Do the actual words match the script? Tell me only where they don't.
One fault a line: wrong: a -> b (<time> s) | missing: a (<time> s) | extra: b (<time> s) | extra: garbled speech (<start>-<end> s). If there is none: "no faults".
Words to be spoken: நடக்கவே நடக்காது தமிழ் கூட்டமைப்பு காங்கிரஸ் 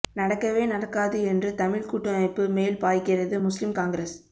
extra: என்று (1.2 s)
extra: மேல் பாய்கிறது முஸ்லிம் (2.5 s)